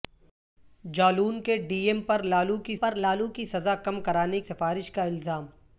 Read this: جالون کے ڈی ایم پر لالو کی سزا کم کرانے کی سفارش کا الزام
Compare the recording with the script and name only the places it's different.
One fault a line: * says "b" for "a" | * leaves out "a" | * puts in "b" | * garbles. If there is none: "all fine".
* puts in "پر لالو کی"
* leaves out "کی"